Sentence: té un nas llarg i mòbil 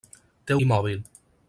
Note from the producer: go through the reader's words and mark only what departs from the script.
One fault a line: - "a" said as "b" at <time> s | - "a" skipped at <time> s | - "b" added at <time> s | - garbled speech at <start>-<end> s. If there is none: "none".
- "un nas llarg" skipped at 0.6 s